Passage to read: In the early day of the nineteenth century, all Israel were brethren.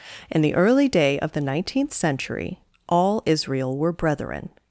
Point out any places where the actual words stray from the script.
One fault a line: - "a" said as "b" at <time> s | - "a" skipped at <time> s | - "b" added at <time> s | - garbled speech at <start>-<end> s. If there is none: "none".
none